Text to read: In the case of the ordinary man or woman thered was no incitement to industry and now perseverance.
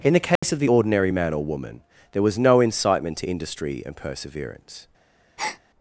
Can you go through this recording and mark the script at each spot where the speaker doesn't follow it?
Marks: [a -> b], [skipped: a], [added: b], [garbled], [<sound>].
In the case [dropout] of the ordinary man or woman [thered -> there] was no incitement to industry and [skipped: now] perseverance. [breath]